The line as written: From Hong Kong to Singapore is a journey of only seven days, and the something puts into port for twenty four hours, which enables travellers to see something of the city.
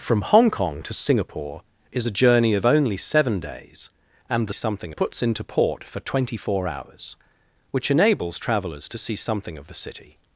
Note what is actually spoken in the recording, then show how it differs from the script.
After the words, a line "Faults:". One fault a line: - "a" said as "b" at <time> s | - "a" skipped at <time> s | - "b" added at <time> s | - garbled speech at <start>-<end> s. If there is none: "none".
From Hong Kong to Singapore is a journey of only seven days, and the something puts into port for twenty four hours, which enables travellers to see something of the city.
Faults:
none